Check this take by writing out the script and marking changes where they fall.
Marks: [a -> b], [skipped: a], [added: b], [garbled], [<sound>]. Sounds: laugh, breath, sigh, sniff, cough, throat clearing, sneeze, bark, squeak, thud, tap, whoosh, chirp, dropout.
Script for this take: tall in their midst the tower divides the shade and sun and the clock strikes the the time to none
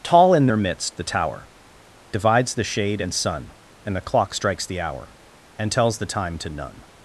tall in their midst the tower divides the shade and sun and the clock strikes the [added: hour and tells] the time to none